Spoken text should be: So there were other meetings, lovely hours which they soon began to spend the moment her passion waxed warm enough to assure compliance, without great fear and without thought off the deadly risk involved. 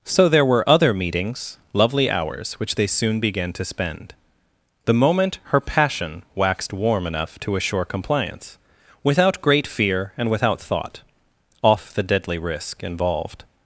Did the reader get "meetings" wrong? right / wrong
right